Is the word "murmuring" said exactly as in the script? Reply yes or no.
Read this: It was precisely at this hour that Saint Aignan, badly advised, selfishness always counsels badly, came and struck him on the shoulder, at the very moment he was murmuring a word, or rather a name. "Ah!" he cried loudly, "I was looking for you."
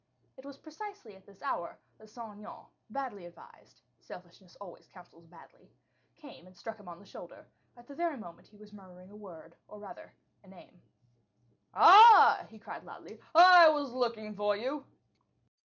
yes